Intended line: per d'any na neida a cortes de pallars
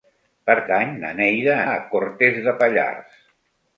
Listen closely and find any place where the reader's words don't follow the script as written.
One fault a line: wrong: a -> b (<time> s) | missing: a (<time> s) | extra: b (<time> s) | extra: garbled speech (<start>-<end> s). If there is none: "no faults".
no faults